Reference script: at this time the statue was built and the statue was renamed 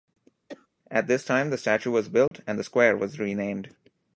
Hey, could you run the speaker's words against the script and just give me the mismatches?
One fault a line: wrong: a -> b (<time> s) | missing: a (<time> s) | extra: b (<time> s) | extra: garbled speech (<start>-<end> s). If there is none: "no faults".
wrong: statue -> square (2.6 s)